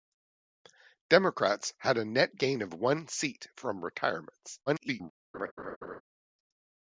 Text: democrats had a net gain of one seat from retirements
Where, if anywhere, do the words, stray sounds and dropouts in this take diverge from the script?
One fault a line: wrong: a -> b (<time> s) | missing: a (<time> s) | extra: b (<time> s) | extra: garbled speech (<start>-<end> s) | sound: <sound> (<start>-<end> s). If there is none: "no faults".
extra: garbled speech (4.7-5.1 s)
sound: laugh (5.3-6.0 s)